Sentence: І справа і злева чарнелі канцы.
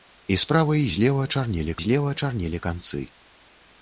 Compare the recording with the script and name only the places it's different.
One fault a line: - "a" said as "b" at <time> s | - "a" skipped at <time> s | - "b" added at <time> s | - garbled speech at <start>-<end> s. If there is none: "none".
- "злева чарнелі" added at 1.8 s